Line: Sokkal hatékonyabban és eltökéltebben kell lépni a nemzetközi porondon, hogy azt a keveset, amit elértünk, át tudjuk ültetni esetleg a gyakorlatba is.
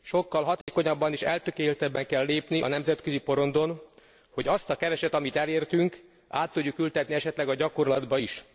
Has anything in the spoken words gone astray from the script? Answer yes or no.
no